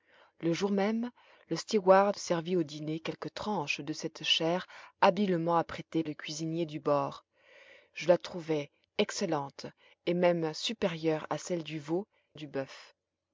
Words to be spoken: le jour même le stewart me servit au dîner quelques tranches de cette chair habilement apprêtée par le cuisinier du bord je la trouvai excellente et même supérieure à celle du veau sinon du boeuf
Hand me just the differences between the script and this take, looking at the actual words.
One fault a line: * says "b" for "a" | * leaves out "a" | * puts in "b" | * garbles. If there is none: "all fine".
* leaves out "me"
* leaves out "par"
* leaves out "sinon"